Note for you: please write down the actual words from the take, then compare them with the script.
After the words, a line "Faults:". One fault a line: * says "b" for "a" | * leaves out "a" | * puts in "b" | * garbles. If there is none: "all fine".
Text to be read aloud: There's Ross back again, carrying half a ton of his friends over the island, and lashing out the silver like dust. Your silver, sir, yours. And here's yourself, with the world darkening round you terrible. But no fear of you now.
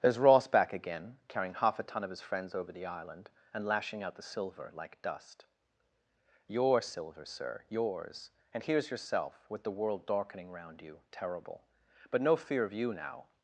There's Ross back again, carrying half a ton of his friends over the island, and lashing out the silver like dust. Your silver, sir, yours. And here's yourself, with the world darkening round you terrible. But no fear of you now.
Faults:
all fine